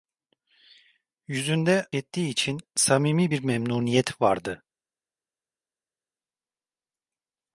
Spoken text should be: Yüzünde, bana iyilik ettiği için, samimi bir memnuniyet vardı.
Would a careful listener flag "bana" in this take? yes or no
yes